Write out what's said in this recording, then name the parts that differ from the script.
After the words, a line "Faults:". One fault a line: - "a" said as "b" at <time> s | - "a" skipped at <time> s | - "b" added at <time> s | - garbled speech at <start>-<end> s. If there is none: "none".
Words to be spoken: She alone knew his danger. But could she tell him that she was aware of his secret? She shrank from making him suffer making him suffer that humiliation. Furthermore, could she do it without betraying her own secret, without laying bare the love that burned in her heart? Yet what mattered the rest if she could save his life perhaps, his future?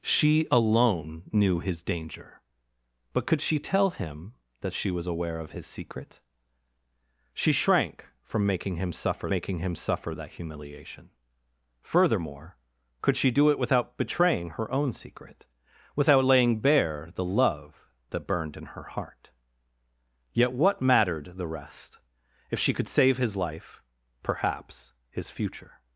She alone knew his danger. But could she tell him that she was aware of his secret? She shrank from making him suffer making him suffer that humiliation. Furthermore, could she do it without betraying her own secret, without laying bare the love that burned in her heart? Yet what mattered the rest if she could save his life perhaps, his future?
Faults:
none